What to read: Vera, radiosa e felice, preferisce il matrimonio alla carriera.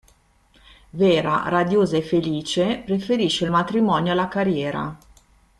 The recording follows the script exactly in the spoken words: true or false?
true